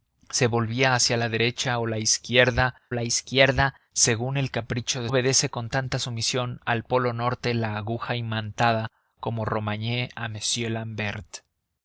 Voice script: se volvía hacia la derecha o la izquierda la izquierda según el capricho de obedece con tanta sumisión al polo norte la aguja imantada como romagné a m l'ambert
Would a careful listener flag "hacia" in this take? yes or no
no